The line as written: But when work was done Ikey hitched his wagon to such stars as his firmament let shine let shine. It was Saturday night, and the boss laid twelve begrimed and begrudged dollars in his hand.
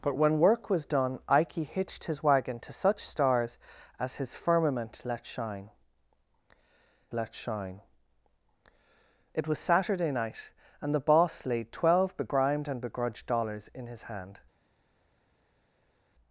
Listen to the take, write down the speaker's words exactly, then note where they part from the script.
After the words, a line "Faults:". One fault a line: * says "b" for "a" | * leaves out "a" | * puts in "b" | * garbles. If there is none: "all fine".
But when work was done Ikey hitched his wagon to such stars as his firmament let shine let shine. It was Saturday night, and the boss laid twelve begrimed and begrudged dollars in his hand.
Faults:
all fine